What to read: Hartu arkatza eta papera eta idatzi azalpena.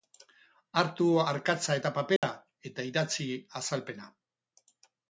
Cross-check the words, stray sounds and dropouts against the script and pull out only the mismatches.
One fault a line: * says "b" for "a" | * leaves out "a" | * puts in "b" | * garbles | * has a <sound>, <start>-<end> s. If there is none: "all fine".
* has a dropout, 2.2-2.2 s